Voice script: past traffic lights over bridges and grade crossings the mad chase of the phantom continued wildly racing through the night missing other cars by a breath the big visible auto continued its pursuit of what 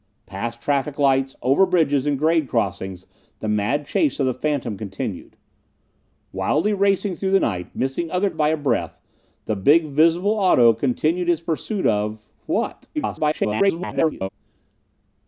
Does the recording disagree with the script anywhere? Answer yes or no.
yes